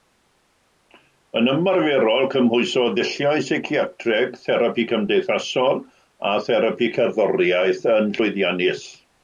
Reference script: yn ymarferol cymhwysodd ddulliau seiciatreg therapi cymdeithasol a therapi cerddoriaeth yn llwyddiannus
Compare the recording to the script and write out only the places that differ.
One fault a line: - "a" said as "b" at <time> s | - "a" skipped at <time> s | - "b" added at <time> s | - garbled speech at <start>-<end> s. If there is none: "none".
none